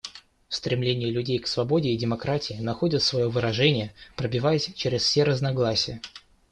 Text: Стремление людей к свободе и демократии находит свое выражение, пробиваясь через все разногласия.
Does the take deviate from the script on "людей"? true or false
false